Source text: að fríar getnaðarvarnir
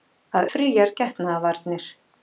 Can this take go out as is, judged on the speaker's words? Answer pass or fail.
pass